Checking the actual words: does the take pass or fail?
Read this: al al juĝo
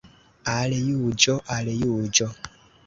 fail